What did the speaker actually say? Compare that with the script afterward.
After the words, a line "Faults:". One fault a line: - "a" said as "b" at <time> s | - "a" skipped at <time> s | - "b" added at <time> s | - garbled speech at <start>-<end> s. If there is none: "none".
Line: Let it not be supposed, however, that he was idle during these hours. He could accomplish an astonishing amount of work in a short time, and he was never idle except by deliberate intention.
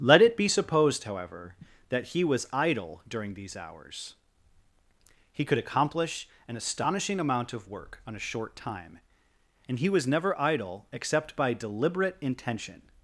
Let it be supposed, however, that he was idle during these hours. He could accomplish an astonishing amount of work on a short time, and he was never idle except by deliberate intention.
Faults:
- "not" skipped at 0.3 s
- "in" said as "on" at 8.1 s